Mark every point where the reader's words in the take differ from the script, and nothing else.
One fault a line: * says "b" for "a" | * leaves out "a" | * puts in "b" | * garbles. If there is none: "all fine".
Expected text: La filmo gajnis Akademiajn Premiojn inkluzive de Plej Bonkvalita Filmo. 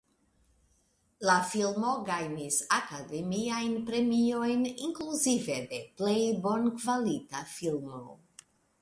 all fine